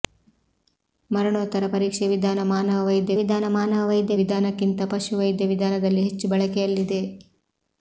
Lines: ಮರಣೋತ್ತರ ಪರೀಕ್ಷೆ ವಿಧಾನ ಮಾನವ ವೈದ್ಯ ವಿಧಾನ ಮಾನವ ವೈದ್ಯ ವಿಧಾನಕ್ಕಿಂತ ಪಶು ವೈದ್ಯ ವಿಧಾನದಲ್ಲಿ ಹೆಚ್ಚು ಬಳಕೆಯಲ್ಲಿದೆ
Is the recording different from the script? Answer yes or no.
no